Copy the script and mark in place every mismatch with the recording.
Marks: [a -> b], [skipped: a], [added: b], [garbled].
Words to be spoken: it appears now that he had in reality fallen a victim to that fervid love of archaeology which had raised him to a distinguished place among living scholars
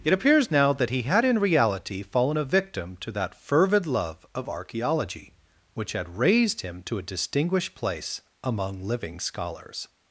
it appears now that he had in reality fallen a victim to that fervid love of archaeology which had raised him to a distinguished place among living scholars